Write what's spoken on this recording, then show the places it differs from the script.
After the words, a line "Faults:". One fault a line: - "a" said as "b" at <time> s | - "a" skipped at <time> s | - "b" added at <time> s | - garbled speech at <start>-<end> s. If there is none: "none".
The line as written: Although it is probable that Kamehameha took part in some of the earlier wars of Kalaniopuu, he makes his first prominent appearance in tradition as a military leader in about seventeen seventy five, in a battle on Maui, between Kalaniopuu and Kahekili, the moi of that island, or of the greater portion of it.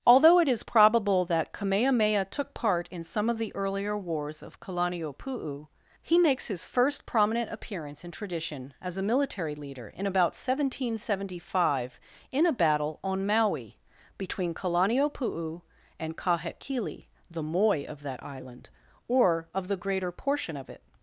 Although it is probable that Kamehameha took part in some of the earlier wars of Kalaniopuu, he makes his first prominent appearance in tradition as a military leader in about seventeen seventy five, in a battle on Maui, between Kalaniopuu and Kahekili, the moi of that island, or of the greater portion of it.
Faults:
none